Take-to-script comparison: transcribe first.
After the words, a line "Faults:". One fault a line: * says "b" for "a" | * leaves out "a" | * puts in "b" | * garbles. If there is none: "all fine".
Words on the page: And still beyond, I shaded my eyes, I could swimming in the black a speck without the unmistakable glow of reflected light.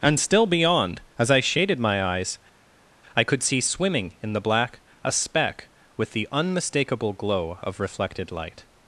And still beyond, as I shaded my eyes, I could see swimming in the black a speck with the unmistakable glow of reflected light.
Faults:
* puts in "as"
* puts in "see"
* says "with" for "without"